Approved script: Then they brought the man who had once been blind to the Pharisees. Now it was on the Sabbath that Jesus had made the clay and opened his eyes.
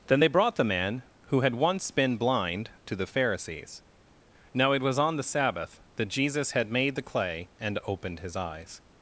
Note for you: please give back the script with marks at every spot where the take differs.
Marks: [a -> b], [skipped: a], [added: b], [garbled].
Then they brought the man who had once been blind to the Pharisees. Now it was on the Sabbath that Jesus had made the clay and opened his eyes.